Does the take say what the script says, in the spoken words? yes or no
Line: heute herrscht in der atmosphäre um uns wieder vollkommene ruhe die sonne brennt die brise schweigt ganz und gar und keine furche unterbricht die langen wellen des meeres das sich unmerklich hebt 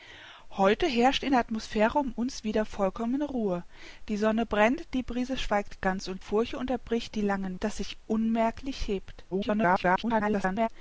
no